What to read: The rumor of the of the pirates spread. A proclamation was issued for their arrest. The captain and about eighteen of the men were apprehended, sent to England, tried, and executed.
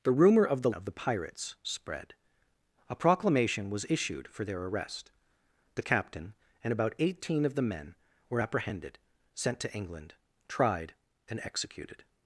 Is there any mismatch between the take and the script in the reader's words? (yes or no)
no